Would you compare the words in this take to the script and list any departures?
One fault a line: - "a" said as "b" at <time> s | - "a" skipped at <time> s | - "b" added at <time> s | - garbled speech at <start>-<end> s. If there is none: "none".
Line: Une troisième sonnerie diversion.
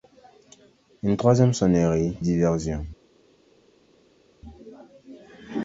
none